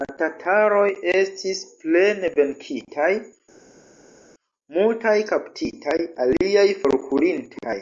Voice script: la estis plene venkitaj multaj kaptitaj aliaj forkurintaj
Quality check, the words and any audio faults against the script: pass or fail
fail